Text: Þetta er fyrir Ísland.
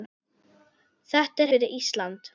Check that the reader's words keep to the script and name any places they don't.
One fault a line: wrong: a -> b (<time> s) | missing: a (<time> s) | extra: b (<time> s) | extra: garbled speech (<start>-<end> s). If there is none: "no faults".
no faults